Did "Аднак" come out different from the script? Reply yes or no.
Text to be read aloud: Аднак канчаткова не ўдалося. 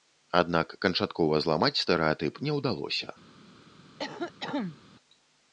no